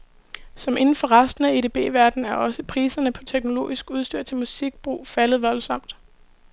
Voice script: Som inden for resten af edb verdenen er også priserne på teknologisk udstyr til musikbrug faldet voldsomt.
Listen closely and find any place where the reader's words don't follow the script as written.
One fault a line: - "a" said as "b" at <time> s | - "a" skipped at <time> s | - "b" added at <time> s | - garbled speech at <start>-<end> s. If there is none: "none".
none